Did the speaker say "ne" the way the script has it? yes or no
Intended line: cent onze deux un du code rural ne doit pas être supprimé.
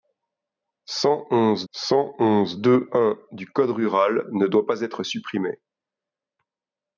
yes